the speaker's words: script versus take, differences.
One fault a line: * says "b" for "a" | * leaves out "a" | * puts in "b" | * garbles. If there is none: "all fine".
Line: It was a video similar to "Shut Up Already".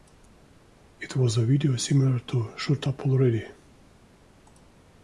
all fine